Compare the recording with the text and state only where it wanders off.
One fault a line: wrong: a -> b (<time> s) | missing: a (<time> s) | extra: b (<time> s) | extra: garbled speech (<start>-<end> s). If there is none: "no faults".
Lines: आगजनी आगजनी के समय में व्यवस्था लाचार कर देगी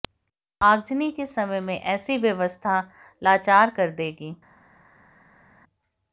missing: आगजनी (1.1 s)
extra: ऐसी (1.8 s)